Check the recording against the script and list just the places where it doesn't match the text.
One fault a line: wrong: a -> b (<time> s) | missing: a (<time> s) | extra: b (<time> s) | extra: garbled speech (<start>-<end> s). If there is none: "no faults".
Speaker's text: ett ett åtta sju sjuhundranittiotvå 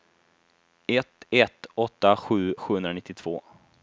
no faults